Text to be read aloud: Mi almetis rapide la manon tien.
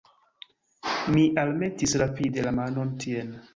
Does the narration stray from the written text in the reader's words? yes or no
no